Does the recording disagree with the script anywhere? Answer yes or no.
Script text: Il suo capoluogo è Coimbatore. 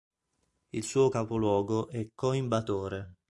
no